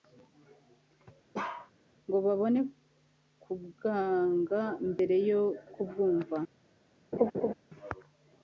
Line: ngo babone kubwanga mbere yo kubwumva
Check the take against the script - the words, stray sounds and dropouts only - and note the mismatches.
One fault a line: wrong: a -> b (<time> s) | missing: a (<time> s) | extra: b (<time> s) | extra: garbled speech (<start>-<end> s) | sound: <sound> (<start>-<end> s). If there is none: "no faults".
sound: bark (1.3-1.7 s)
sound: laugh (7.1-7.5 s)